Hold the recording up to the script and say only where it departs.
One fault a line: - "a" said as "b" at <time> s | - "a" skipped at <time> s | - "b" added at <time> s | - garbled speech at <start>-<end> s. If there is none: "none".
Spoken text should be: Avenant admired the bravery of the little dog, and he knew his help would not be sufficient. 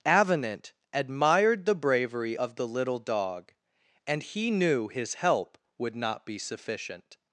none